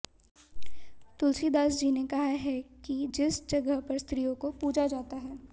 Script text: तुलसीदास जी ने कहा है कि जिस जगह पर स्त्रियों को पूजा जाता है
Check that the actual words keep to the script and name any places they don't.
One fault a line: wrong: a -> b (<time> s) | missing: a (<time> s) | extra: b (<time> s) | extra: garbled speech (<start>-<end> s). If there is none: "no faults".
no faults